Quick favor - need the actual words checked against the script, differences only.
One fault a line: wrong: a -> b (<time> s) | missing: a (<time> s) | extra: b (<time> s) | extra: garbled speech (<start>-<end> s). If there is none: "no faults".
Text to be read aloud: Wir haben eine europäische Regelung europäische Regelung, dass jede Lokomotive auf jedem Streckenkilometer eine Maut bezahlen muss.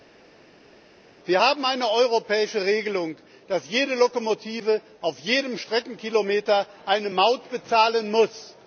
missing: europäische Regelung (3.2 s)